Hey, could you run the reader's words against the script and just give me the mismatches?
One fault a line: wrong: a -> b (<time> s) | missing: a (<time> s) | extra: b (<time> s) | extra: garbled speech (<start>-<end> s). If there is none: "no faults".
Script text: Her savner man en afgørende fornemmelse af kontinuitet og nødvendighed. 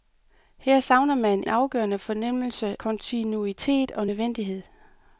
missing: en (1.4 s)
missing: af (2.8 s)